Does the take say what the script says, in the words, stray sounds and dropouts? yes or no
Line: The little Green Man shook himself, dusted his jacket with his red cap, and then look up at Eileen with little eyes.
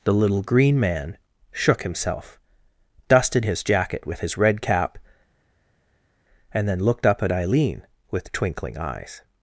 no